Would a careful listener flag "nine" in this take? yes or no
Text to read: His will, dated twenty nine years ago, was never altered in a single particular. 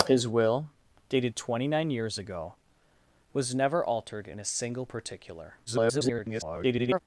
no